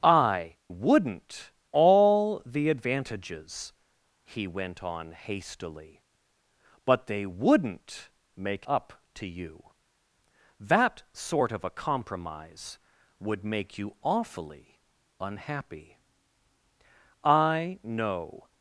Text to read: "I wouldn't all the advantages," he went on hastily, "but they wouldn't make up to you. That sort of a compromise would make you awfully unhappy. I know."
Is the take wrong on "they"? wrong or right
right